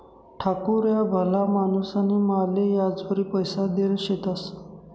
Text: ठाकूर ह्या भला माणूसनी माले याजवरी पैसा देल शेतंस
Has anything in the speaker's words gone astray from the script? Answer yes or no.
no